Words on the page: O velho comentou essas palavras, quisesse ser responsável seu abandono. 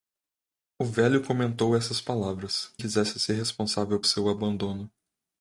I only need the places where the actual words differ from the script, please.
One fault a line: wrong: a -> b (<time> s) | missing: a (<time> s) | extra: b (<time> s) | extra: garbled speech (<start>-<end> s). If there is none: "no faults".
no faults